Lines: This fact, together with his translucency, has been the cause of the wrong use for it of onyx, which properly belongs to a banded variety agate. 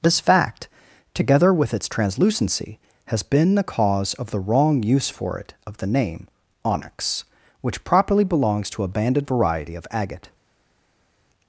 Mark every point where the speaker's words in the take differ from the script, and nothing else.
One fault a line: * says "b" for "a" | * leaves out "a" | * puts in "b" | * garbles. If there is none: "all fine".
* says "its" for "his"
* puts in "the name"
* puts in "of"